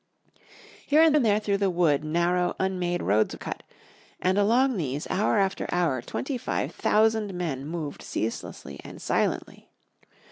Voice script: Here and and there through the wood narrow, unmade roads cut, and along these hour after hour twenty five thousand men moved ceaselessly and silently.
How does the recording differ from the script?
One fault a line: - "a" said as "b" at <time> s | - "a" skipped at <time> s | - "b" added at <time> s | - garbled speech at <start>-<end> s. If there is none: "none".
none